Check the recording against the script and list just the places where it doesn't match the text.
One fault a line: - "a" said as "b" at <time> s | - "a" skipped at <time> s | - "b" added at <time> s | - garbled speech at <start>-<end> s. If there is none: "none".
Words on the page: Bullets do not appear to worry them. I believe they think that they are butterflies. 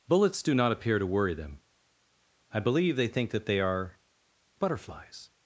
none